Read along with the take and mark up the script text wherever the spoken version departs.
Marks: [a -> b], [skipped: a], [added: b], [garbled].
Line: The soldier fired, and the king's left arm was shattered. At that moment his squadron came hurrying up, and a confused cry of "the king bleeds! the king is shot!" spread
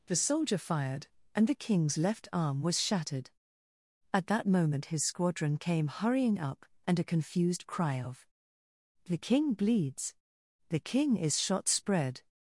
The soldier fired, and the king's left arm was shattered. At that moment his squadron came hurrying up, and a confused cry of "the king bleeds! the king is shot!" spread